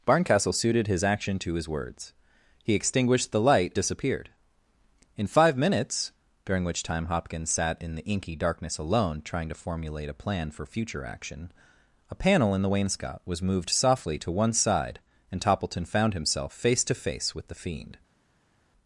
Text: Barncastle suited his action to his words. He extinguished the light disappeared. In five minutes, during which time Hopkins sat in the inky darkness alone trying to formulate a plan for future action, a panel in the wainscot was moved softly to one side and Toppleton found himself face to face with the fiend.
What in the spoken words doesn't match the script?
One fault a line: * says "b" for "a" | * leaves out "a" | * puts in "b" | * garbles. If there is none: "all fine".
all fine